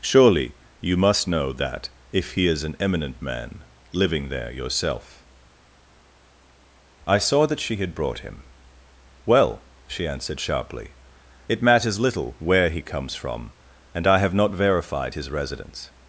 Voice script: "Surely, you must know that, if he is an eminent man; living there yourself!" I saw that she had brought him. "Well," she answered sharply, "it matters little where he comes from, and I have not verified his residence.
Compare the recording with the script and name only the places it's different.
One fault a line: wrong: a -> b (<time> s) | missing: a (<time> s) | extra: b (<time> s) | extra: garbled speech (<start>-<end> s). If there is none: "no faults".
no faults